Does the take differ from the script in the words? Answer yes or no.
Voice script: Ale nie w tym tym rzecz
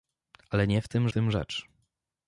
no